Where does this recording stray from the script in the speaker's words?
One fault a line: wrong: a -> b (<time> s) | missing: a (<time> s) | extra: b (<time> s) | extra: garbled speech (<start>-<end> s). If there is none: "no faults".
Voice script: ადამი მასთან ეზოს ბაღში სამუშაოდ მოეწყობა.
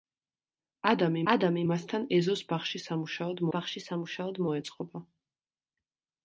extra: ადამი (1.3 s)
extra: ბაღში სამუშაოდ (3.6 s)